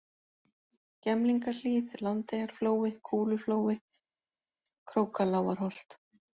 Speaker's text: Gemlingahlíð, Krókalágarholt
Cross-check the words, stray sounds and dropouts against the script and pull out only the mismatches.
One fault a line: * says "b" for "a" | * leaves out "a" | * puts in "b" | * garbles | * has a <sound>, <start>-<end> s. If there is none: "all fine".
* puts in "Landeyjaflói Kúluflói"